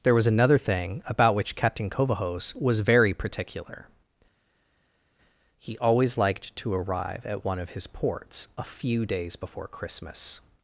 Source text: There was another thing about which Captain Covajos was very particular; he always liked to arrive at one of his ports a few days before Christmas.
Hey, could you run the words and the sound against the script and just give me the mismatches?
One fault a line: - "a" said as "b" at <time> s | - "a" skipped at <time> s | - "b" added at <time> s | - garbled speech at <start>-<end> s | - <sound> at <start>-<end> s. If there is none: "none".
none